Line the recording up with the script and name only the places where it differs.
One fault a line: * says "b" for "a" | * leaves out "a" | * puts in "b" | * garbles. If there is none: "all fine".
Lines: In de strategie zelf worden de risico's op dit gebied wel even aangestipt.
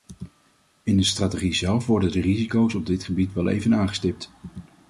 all fine